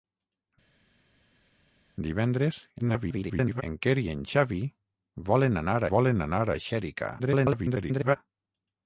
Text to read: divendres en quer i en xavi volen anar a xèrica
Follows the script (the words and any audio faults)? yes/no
no